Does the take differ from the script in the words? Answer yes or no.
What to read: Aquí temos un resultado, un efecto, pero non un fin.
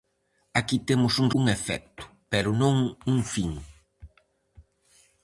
yes